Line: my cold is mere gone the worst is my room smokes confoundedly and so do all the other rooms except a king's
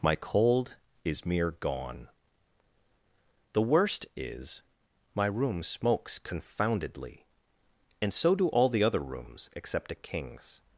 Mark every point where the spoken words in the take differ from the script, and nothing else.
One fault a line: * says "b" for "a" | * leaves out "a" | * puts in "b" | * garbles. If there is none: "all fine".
all fine